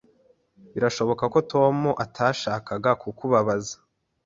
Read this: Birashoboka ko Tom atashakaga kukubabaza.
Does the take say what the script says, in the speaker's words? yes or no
yes